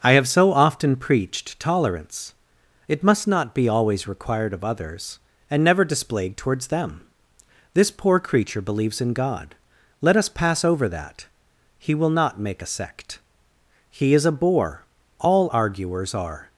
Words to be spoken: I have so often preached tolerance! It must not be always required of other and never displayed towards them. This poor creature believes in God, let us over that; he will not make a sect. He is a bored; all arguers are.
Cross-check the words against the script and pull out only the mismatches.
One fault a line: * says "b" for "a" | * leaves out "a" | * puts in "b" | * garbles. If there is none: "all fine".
* says "others" for "other"
* puts in "pass"
* says "bore" for "bored"